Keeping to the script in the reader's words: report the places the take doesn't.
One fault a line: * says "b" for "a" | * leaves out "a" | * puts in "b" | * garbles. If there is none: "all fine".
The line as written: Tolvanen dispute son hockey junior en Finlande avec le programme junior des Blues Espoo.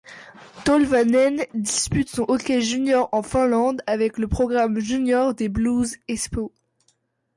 all fine